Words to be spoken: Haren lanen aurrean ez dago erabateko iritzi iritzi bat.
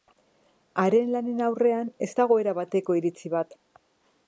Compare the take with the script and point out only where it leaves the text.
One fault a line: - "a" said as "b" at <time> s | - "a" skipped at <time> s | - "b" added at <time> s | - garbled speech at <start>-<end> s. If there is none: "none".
- "iritzi" skipped at 3.4 s